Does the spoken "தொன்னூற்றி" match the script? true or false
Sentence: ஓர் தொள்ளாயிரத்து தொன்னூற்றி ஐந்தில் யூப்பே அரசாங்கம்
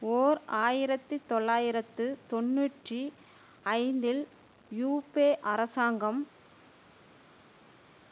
true